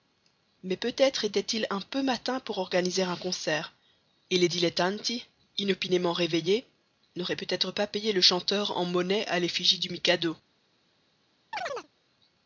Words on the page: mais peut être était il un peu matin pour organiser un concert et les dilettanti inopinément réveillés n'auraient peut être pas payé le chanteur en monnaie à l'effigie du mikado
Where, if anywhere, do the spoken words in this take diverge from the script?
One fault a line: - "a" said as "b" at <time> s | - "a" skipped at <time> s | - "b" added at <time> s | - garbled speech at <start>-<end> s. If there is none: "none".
none